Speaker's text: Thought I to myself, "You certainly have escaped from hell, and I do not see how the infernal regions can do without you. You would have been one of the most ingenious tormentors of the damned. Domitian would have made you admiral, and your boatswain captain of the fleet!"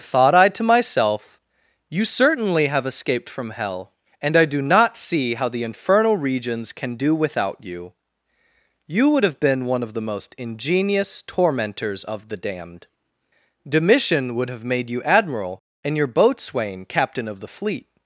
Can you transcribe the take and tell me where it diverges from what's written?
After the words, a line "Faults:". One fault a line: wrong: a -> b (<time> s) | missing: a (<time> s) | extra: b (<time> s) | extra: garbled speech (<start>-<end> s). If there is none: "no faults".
Thought I to myself, "You certainly have escaped from hell, and I do not see how the infernal regions can do without you. You would have been one of the most ingenious tormentors of the damned. Domitian would have made you admiral, and your boatswain captain of the fleet!"
Faults:
no faults